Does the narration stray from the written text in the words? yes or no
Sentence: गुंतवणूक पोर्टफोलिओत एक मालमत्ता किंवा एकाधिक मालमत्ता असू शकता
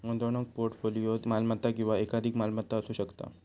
yes